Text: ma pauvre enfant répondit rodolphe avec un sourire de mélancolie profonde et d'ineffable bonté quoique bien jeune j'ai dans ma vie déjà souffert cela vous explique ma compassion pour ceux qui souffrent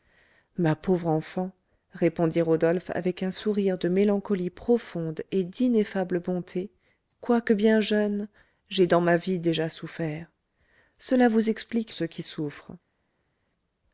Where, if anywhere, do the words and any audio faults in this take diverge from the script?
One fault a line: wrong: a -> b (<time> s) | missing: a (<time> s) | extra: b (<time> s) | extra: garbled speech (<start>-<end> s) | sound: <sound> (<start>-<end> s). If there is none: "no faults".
missing: ma compassion pour (11.9 s)